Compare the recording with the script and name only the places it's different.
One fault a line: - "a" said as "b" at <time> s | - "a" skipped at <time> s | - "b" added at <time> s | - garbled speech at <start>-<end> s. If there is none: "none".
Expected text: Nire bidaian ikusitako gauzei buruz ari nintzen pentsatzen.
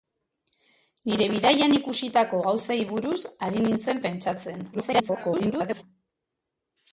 - garbled speech at 4.7-5.8 s